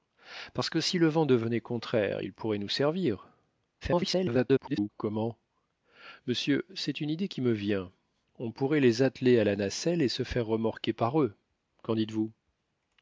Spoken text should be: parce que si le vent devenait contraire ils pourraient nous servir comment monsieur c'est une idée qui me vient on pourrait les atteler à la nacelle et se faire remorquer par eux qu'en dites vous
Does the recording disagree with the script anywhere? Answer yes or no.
yes